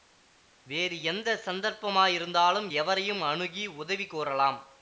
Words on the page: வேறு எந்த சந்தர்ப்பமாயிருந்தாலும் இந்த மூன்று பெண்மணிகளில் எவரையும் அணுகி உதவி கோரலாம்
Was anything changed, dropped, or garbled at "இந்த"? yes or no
yes